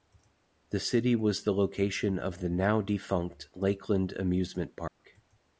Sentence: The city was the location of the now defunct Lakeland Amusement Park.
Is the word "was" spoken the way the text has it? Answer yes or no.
yes